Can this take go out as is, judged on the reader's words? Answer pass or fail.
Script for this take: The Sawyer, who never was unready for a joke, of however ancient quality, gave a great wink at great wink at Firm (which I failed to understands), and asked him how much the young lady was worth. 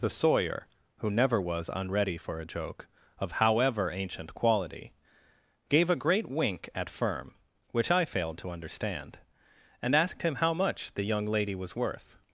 fail